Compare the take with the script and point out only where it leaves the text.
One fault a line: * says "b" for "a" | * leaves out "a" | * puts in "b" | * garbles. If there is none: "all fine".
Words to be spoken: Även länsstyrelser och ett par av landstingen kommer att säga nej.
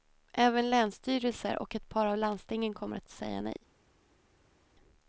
all fine